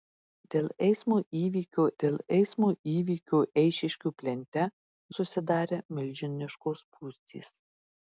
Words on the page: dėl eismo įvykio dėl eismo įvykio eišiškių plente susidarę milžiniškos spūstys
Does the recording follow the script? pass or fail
pass